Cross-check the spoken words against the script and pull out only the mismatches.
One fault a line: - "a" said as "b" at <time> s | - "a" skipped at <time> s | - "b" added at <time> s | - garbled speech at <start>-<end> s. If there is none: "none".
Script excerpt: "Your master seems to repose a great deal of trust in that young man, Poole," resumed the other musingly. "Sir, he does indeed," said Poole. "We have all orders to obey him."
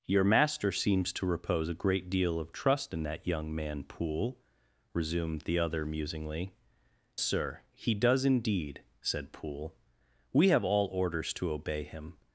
none